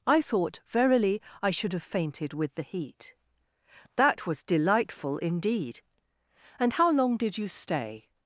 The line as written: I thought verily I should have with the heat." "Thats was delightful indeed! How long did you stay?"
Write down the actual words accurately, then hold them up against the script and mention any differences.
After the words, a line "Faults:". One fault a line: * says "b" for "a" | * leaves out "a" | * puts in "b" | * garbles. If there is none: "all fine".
I thought verily I should have fainted with the heat." "That was delightful indeed! And how long did you stay?"
Faults:
* puts in "fainted"
* says "That" for "Thats"
* puts in "And"